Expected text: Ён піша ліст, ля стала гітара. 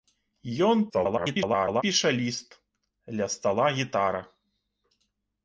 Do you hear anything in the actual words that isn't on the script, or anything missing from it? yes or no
yes